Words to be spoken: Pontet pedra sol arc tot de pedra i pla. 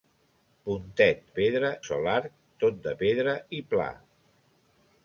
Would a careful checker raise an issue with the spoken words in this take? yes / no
no